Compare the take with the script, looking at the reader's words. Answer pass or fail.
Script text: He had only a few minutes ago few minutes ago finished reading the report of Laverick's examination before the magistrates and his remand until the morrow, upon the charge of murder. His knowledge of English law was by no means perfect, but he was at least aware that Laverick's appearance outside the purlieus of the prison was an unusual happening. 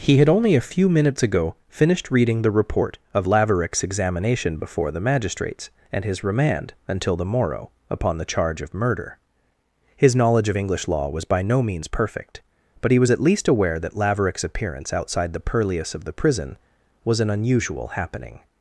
fail